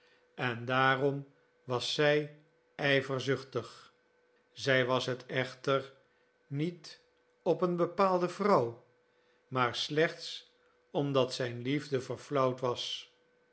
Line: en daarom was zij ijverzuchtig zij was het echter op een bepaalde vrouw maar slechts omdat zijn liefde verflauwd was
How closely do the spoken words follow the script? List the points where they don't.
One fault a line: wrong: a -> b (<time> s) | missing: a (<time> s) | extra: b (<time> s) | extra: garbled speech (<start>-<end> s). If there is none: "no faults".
extra: niet (6.5 s)